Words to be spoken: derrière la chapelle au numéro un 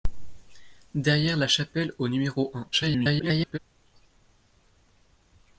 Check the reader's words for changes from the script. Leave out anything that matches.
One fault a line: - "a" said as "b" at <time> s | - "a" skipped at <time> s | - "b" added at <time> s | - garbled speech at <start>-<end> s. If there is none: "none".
- garbled speech at 2.7-3.6 s